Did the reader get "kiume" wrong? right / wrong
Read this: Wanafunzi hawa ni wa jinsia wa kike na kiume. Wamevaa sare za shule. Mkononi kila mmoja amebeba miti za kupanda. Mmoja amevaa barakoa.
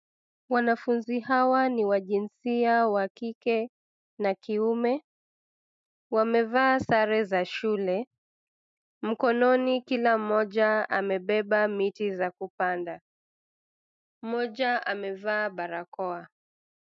right